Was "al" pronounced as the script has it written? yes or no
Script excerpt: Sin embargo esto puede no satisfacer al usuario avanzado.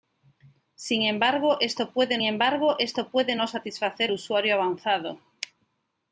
no